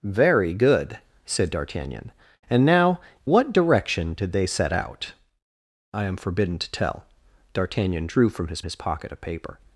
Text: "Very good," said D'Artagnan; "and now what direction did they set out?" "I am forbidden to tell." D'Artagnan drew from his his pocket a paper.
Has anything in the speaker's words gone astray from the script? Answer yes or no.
no